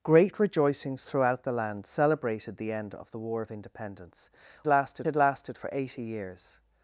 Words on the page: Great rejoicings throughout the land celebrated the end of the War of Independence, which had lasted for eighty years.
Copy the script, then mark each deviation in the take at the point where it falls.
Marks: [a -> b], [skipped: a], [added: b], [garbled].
Great rejoicings throughout the land celebrated the end of the War of Independence, [which -> lasted] had lasted for eighty years.